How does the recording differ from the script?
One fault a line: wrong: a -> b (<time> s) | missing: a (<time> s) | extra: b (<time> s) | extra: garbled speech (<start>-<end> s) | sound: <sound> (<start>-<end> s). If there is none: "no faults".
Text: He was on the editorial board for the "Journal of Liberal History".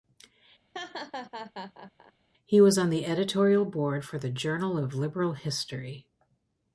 sound: laugh (0.7-2.1 s)